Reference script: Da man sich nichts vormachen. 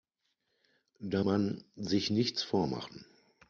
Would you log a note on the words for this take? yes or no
no